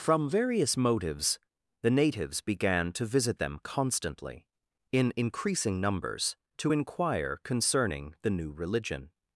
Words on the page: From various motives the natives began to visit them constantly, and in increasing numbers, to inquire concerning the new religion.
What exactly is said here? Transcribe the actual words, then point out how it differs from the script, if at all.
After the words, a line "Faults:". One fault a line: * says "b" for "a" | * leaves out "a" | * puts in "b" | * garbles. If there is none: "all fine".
From various motives the natives began to visit them constantly, in increasing numbers, to inquire concerning the new religion.
Faults:
* leaves out "and"